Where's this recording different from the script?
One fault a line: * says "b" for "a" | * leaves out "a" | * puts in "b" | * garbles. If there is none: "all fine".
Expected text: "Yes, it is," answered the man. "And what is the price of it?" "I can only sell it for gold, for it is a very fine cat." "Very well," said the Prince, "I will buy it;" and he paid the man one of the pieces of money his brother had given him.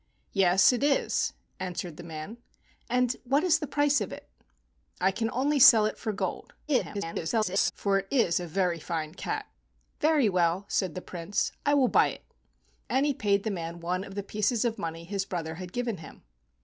* garbles